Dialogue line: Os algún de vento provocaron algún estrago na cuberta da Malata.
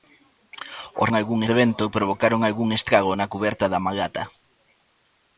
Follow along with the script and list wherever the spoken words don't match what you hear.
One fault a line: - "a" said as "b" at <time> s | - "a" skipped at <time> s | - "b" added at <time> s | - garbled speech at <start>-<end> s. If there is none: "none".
none